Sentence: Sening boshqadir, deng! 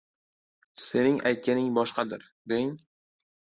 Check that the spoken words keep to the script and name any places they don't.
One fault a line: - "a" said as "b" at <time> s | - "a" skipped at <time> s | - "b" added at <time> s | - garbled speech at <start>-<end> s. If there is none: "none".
- "aytganing" added at 1.3 s